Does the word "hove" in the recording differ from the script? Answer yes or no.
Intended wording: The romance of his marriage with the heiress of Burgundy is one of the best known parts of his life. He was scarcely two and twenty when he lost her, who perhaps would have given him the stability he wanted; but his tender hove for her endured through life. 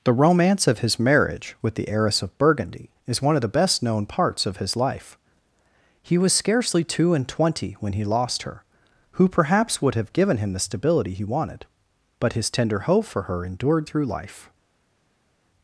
yes